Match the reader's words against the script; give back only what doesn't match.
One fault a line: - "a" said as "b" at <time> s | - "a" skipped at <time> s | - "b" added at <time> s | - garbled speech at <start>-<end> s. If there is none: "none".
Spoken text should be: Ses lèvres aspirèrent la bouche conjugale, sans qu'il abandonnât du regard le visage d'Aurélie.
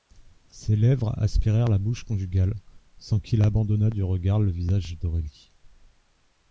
none